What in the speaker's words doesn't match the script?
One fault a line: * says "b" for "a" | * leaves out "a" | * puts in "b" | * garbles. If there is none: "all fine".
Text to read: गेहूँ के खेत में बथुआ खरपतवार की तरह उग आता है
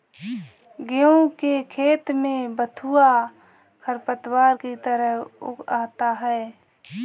all fine